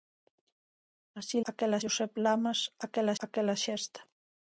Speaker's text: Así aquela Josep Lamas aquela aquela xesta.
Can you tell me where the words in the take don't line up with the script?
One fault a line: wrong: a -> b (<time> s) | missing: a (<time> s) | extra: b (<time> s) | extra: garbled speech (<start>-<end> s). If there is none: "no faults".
no faults